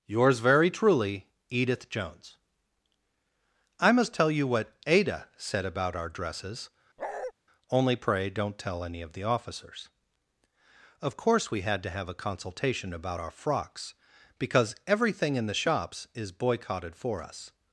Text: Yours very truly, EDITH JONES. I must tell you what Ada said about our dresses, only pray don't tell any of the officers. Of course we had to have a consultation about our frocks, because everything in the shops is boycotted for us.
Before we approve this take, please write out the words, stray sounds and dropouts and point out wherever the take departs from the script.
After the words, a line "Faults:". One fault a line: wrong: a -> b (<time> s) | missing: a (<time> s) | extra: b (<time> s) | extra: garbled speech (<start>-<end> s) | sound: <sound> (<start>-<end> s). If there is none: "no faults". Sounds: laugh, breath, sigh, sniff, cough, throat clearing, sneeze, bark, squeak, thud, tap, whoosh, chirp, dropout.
Yours very truly, EDITH JONES. I must tell you what Ada said about our dresses, only pray don't tell any of the officers. Of course we had to have a consultation about our frocks, because everything in the shops is boycotted for us.
Faults:
sound: bark (7.0-7.3 s)